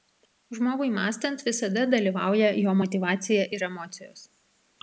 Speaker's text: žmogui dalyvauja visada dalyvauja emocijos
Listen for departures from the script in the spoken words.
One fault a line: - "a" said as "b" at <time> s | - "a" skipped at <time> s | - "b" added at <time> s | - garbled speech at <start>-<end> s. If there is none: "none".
- "dalyvauja" said as "mąstant" at 0.9 s
- "jo motyvacija ir" added at 2.6 s